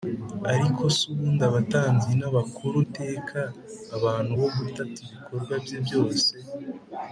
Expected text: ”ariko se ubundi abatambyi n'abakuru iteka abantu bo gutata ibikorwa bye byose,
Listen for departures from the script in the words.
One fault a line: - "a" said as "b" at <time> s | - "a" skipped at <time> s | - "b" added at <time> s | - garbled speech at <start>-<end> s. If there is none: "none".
none